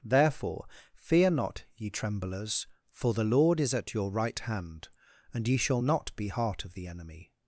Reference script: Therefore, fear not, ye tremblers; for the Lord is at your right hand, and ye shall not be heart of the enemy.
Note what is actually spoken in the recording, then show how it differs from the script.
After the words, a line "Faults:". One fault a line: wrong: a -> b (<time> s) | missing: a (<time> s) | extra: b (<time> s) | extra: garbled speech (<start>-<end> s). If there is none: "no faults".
Therefore, fear not, ye tremblers; for the Lord is at your right hand, and ye shall not be heart of the enemy.
Faults:
no faults